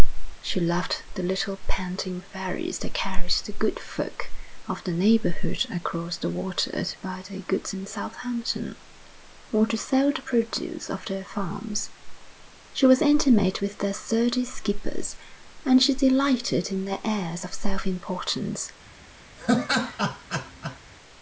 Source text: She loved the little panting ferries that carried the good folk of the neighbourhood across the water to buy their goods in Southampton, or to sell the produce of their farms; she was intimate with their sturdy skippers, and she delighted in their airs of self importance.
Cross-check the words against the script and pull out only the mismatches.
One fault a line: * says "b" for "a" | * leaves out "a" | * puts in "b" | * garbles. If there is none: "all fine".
all fine